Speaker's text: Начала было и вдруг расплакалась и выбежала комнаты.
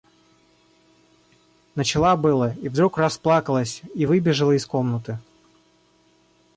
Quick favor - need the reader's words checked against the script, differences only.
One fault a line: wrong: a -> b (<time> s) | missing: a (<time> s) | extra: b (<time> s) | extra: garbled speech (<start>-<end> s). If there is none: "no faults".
extra: из (4.5 s)